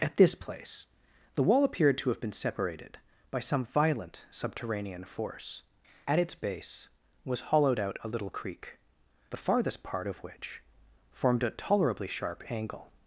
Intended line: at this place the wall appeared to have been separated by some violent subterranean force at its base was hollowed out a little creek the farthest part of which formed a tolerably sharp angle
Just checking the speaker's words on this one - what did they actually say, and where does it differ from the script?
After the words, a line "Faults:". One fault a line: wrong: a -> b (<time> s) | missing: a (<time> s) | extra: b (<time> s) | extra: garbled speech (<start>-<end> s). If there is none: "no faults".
at this place the wall appeared to have been separated by some violent subterranean force at its base was hollowed out a little creek the farthest part of which formed a tolerably sharp angle
Faults:
no faults